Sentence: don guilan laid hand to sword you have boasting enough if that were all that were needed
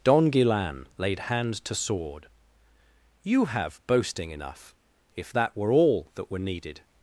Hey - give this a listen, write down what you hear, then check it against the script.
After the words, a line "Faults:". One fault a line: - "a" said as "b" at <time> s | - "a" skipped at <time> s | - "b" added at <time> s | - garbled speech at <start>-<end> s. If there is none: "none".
don guilan laid hand to sword you have boasting enough if that were all that were needed
Faults:
none